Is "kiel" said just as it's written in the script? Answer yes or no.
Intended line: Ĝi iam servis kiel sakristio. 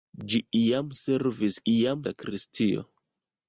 no